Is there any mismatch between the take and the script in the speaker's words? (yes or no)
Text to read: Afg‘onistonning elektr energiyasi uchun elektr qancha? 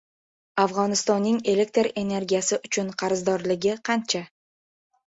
yes